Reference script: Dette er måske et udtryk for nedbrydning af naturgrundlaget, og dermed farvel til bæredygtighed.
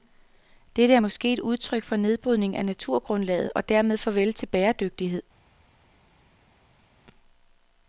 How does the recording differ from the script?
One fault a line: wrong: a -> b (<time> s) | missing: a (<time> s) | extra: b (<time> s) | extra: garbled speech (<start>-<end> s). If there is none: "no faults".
no faults